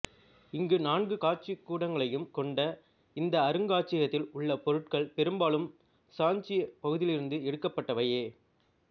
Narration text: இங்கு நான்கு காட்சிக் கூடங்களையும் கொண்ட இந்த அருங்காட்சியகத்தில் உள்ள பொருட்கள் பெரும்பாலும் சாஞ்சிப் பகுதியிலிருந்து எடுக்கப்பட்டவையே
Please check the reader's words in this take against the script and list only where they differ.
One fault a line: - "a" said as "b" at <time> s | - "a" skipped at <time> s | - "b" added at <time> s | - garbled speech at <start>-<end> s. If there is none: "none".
none